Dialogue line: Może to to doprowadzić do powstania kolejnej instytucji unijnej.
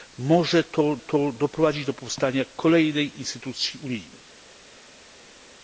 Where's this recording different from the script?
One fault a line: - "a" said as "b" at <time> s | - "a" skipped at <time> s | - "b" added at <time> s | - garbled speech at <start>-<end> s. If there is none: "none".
none